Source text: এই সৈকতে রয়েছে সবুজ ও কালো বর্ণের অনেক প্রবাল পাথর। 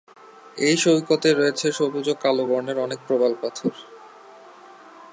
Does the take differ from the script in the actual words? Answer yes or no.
no